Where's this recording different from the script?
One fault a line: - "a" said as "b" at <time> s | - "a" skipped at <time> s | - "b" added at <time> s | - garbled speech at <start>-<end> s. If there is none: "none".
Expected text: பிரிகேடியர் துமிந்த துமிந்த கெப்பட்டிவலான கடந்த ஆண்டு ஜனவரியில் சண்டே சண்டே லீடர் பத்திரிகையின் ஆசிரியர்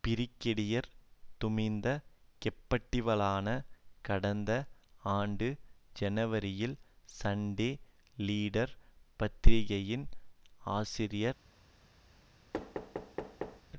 - "துமிந்த" skipped at 1.9 s
- "சண்டே" skipped at 7.7 s